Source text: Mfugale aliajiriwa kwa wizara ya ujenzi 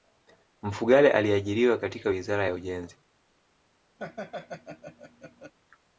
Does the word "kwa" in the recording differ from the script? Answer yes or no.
yes